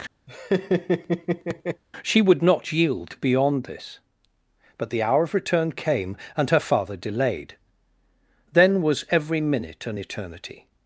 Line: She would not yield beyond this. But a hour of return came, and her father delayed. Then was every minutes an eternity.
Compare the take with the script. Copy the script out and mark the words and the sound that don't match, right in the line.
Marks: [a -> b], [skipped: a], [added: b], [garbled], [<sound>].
[laugh] She would not yield beyond this. But [a -> the] hour of return came, and her father delayed. Then was every [minutes -> minute] an eternity.